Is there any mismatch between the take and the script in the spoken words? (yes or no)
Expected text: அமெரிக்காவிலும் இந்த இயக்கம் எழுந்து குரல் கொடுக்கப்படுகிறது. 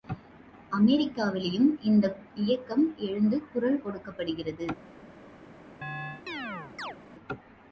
no